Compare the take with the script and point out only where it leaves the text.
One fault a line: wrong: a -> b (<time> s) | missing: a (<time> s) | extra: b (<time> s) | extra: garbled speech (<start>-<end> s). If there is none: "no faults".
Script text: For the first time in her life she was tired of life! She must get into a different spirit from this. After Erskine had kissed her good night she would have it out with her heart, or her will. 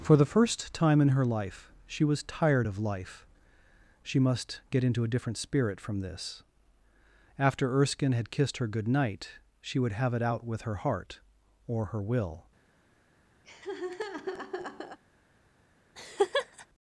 no faults